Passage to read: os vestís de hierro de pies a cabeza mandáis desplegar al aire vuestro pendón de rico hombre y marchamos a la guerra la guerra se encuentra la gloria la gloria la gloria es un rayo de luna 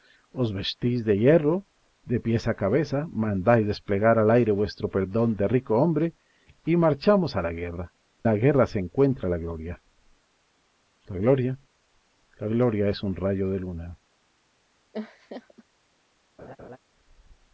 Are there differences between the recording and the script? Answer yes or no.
no